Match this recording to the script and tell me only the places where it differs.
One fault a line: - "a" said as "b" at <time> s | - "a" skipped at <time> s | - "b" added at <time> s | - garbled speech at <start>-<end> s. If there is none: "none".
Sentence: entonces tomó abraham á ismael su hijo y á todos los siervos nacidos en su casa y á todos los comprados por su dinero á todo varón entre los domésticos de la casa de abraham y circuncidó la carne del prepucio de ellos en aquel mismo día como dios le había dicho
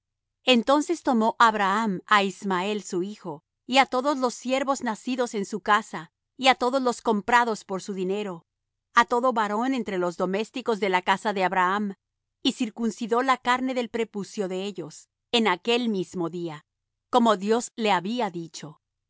none